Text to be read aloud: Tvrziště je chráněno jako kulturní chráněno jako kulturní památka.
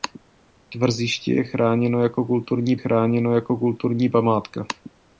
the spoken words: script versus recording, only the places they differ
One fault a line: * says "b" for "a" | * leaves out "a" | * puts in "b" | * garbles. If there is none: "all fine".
all fine